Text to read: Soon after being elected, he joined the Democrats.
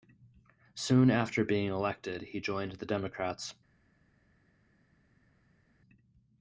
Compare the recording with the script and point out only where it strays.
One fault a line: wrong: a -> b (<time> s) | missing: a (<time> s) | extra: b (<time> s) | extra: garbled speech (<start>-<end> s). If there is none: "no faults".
no faults